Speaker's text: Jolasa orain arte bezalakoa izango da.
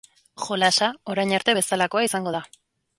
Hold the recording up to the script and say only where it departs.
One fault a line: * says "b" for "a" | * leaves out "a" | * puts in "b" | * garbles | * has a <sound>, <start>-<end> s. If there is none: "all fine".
all fine